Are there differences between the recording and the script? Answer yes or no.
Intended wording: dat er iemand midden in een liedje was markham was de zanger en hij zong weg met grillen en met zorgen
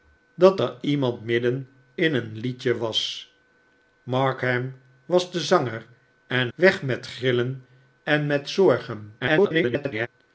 yes